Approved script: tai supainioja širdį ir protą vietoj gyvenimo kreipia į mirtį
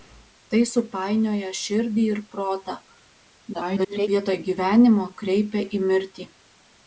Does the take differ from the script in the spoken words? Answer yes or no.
yes